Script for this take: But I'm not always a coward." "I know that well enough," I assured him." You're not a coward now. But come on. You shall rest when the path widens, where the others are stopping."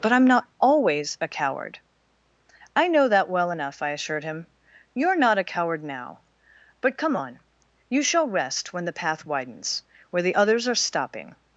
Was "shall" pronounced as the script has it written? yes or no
yes